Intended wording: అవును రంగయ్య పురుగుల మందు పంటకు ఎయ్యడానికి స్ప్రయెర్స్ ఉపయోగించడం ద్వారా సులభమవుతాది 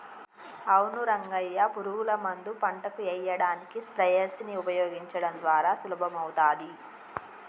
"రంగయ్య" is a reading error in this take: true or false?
false